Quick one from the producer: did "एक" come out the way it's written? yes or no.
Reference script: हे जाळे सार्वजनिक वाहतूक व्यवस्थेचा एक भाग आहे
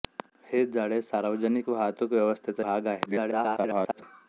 no